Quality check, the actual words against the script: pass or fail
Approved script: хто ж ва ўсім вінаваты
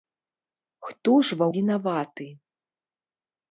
fail